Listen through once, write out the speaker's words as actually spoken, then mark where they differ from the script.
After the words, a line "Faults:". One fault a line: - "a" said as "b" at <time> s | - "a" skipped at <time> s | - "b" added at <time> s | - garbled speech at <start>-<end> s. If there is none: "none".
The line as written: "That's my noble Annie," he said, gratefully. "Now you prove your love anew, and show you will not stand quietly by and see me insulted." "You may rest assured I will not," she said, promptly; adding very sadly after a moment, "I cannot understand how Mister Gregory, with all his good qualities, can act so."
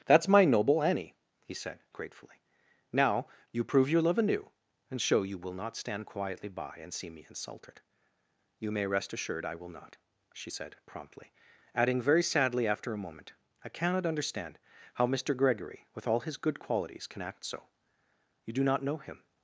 "That's my noble Annie," he said, gratefully. "Now you prove your love anew, and show you will not stand quietly by and see me insulted." "You may rest assured I will not," she said, promptly; adding very sadly after a moment, "I cannot understand how Mister Gregory, with all his good qualities, can act so." "You do not know him
Faults:
- "You do not know him" added at 18.5 s